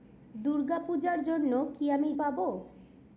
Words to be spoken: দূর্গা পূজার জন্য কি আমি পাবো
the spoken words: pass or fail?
pass